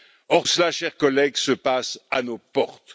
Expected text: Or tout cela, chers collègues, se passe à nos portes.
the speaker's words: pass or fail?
fail